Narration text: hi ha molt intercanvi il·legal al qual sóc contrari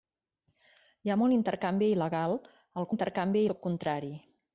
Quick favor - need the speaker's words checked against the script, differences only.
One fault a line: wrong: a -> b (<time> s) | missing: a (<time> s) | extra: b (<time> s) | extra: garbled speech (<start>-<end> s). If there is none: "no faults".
wrong: qual -> intercanvi (2.9 s)